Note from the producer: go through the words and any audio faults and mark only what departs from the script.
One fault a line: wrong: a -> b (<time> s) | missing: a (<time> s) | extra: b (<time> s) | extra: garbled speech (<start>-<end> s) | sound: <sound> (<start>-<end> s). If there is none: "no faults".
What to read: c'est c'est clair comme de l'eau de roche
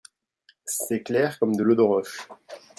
missing: c'est (1.0 s)